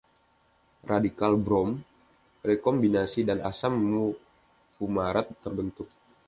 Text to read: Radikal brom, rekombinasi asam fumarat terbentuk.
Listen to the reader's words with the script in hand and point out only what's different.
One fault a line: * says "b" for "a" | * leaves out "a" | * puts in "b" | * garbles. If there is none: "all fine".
* puts in "dan"